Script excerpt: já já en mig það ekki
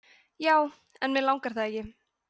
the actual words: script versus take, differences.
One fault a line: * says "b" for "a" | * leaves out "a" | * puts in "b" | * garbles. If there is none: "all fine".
* leaves out "já"
* puts in "langar"